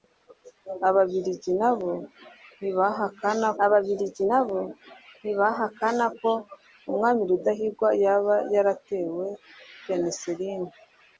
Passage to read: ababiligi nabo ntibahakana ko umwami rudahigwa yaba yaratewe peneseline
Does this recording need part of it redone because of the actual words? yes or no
yes